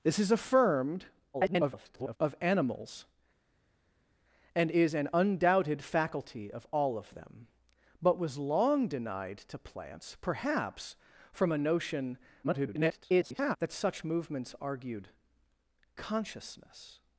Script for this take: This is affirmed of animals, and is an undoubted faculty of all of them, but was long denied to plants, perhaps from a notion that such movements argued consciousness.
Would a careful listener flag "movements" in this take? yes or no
no